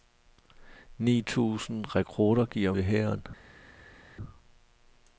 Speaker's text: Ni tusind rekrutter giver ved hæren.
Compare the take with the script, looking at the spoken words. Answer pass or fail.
pass